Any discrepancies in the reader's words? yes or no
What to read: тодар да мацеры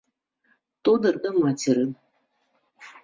no